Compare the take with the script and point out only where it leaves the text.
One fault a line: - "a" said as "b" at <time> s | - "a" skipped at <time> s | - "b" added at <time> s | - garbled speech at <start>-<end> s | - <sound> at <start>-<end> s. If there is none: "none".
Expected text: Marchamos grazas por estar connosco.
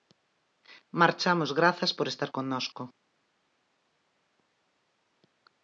none